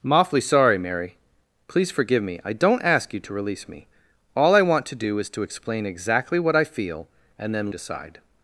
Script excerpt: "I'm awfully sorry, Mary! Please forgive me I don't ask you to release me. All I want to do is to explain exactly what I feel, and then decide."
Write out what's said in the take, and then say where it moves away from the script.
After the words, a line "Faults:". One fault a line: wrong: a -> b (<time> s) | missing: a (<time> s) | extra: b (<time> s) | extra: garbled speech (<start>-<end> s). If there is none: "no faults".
"I'm awfully sorry, Mary! Please forgive me I don't ask you to release me. All I want to do is to explain exactly what I feel, and then decide."
Faults:
no faults